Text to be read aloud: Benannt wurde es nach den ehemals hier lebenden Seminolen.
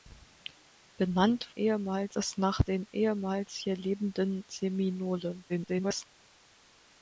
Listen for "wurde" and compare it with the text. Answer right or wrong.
wrong